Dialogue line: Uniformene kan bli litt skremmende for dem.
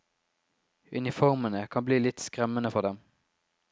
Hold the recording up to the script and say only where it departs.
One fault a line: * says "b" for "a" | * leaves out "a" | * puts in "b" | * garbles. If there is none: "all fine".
all fine